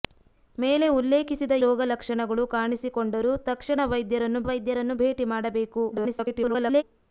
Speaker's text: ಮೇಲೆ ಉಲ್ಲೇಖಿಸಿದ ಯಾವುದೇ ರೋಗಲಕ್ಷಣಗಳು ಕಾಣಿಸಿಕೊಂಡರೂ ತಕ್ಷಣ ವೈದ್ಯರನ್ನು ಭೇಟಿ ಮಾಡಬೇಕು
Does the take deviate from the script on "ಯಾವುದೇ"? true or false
true